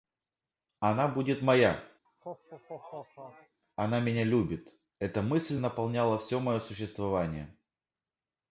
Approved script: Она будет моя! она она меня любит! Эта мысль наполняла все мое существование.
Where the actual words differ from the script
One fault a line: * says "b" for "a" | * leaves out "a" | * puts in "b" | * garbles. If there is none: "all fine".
* leaves out "она"